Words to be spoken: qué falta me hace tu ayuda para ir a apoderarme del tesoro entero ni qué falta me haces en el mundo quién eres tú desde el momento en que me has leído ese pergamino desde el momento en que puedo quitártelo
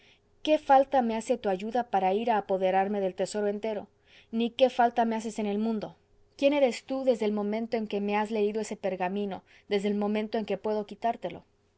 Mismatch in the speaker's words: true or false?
false